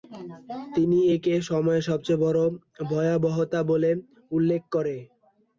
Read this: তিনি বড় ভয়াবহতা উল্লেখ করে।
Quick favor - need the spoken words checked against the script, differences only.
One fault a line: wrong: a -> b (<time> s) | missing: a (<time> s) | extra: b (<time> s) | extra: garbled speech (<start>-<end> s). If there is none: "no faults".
extra: একে সময়ের সবচেয়ে (1.1 s)
extra: বলে (3.7 s)